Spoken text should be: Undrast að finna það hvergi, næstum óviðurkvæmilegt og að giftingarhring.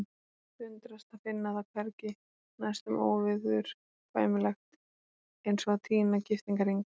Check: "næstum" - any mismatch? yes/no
no